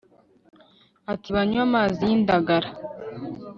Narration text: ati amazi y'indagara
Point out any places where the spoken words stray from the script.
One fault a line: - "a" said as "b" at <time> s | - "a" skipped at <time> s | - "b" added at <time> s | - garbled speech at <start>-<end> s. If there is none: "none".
- "banywe" added at 1.3 s